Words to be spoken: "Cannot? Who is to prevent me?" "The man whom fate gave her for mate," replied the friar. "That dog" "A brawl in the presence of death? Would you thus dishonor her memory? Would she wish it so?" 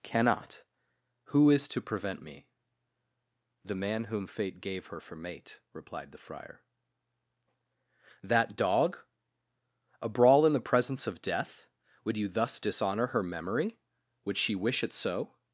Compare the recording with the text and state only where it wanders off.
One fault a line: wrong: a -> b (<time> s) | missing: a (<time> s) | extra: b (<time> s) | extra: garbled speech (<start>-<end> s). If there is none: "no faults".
no faults